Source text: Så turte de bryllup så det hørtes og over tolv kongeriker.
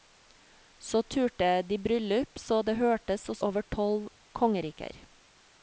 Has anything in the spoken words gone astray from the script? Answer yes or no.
no